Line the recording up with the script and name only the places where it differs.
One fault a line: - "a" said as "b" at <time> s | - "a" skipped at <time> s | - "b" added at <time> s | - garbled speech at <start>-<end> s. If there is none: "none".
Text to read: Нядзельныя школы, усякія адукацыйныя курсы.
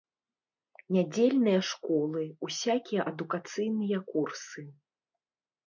none